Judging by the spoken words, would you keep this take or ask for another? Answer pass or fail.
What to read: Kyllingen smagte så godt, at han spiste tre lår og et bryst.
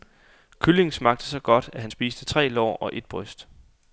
pass